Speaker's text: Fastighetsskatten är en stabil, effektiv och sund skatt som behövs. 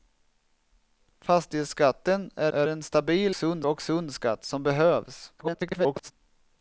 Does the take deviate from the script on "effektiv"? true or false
true